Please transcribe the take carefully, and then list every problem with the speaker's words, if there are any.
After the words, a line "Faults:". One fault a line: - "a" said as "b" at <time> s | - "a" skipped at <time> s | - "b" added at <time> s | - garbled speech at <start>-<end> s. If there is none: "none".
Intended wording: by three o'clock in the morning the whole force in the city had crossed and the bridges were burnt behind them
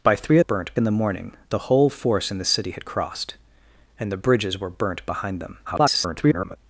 by three burnt in the morning the whole force in the city had crossed and the bridges were burnt behind them [garbled]
Faults:
- "o'clock" said as "burnt" at 0.4 s
- garbled speech at 5.7-6.6 s